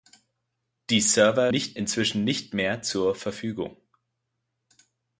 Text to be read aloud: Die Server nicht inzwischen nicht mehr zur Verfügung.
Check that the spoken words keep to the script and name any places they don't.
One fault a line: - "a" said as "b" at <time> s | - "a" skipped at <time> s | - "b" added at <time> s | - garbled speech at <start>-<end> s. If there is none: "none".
none